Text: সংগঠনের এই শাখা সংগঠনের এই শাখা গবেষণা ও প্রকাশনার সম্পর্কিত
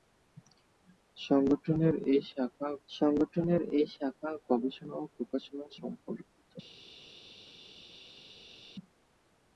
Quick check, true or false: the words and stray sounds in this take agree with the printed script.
true